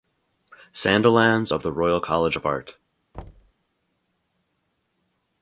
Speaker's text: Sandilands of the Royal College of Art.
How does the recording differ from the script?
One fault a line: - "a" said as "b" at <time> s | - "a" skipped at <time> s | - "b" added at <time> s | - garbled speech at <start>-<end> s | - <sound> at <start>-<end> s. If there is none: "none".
- thud at 3.1-3.5 s